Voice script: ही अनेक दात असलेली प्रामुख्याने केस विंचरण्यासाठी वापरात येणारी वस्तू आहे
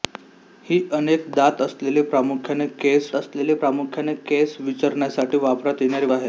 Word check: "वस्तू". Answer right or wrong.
wrong